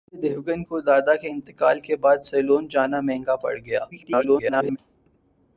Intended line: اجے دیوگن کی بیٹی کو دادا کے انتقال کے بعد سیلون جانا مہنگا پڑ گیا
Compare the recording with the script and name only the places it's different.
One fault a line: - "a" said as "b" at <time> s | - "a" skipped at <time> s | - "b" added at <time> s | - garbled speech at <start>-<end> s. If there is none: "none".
- "کی بیٹی" skipped at 0.6 s
- garbled speech at 3.9-4.8 s